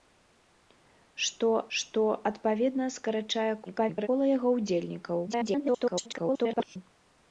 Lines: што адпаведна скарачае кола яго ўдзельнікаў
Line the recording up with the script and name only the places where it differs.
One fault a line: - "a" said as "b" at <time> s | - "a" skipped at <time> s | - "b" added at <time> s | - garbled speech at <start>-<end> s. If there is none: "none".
- "што" added at 1.8 s
- garbled speech at 3.7-4.1 s
- garbled speech at 5.3-6.8 s